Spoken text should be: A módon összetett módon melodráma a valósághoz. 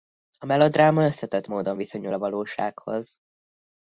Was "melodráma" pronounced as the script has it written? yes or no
no